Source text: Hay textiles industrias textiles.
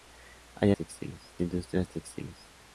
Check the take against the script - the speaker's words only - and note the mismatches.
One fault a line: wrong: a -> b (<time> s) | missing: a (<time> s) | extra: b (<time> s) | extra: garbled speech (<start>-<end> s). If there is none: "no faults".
no faults